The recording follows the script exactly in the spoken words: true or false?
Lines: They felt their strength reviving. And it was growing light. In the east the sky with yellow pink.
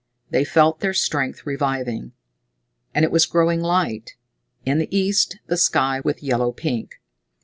true